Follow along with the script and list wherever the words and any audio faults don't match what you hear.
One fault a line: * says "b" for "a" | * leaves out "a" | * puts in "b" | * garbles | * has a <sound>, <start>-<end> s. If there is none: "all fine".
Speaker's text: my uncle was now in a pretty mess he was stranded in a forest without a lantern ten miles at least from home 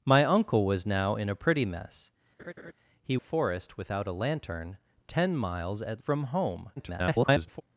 * has a laugh, 2.4-2.7 s
* leaves out "was stranded in"
* leaves out "least"
* garbles